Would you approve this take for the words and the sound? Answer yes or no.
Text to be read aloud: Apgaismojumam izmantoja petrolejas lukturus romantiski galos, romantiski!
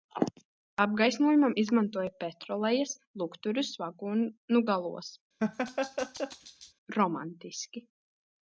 no